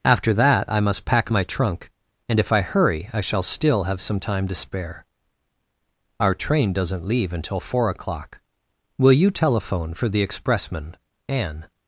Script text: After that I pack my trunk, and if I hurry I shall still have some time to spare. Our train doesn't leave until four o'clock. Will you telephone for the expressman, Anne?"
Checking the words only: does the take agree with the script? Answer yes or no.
no